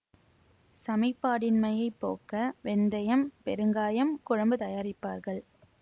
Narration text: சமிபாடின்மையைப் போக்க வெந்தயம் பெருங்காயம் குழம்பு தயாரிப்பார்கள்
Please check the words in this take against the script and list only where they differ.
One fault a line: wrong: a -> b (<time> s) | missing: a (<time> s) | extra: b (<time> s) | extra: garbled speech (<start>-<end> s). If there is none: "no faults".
no faults